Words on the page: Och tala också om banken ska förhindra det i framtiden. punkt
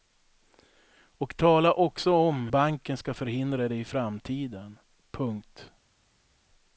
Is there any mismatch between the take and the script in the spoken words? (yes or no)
no